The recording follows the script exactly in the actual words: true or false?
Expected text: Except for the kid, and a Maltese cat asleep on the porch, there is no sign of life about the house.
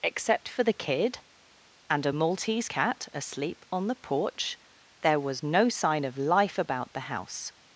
false